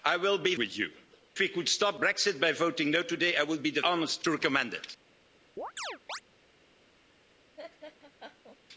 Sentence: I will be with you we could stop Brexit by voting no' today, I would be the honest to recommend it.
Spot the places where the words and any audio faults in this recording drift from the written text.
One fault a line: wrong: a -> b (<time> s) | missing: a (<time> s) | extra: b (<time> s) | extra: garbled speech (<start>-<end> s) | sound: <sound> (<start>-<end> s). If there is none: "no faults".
sound: chirp (5.6-6.2 s)
sound: laugh (7.6-8.6 s)